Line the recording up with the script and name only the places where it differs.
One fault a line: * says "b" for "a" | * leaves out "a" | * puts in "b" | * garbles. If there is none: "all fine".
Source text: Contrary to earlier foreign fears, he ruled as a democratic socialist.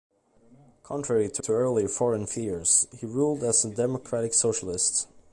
* puts in "to"